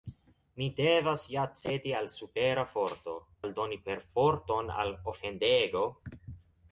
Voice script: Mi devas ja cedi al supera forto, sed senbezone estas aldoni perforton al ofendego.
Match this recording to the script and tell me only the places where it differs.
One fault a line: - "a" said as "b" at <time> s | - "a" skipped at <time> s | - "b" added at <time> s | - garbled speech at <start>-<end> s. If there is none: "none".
- "sed senbezone estas" skipped at 3.1 s